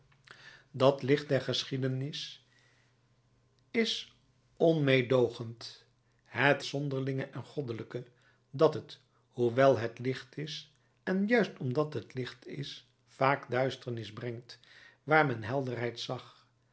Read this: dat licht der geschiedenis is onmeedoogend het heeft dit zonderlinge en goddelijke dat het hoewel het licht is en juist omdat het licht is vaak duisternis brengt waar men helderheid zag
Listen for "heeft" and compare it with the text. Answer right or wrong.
wrong